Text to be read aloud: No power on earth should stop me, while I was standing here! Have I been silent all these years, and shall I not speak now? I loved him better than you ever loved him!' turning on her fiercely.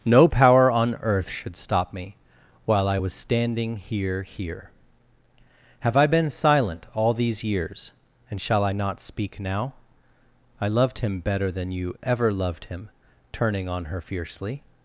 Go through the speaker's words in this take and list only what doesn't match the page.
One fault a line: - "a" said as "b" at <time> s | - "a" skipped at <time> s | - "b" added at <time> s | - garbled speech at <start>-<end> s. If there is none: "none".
- "here" added at 4.2 s